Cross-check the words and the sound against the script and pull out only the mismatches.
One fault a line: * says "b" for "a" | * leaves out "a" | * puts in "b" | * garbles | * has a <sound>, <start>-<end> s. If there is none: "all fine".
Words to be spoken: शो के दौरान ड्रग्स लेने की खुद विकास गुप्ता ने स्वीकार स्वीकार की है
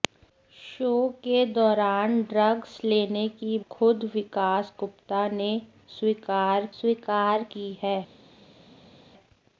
all fine